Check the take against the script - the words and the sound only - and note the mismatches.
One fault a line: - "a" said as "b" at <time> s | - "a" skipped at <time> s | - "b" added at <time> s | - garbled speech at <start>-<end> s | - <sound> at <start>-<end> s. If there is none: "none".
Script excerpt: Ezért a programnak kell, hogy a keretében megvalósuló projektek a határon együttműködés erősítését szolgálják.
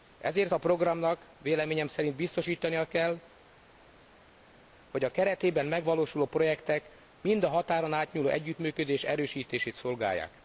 - "véleményem szerint biztosítania" added at 1.4 s
- "mind" added at 7.2 s
- "átnyúló" added at 7.9 s